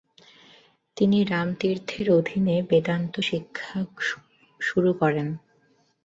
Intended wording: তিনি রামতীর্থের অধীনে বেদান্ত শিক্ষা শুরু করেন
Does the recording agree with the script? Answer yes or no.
yes